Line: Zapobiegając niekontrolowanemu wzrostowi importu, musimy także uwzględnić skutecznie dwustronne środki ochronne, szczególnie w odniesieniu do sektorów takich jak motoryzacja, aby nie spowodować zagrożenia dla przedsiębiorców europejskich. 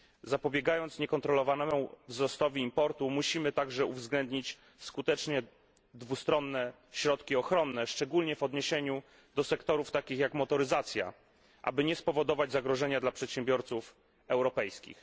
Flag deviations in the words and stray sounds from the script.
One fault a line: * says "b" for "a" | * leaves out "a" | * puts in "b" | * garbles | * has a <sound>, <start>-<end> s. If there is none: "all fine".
all fine